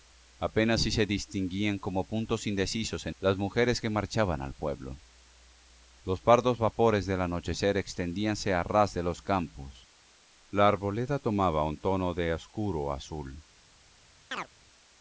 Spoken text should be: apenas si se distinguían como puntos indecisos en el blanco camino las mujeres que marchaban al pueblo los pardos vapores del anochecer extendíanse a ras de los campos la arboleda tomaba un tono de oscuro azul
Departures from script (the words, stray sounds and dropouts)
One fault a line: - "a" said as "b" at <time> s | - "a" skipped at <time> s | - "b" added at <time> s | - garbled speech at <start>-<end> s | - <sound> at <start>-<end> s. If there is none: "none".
- "el blanco camino" skipped at 3.1 s
- chirp at 14.3-14.5 s